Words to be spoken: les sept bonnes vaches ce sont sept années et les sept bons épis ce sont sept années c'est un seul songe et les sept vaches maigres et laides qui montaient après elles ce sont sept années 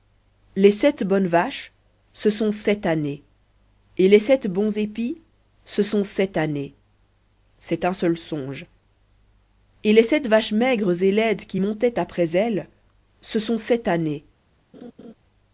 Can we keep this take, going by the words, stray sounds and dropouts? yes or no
no